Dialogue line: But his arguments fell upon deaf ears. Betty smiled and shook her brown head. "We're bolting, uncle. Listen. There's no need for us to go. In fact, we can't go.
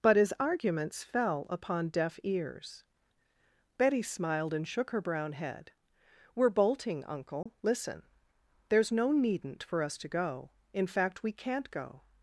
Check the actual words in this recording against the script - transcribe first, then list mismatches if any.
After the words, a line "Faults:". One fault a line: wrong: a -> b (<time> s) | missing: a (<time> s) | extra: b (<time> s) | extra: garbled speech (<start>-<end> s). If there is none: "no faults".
But his arguments fell upon deaf ears. Betty smiled and shook her brown head. "We're bolting, uncle. Listen. There's no needn't for us to go. In fact, we can't go.
Faults:
wrong: need -> needn't (9.1 s)